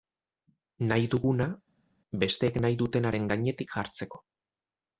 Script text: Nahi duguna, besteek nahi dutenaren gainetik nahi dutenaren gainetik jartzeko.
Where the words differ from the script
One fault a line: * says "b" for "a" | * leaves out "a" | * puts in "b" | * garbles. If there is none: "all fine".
* leaves out "nahi dutenaren gainetik"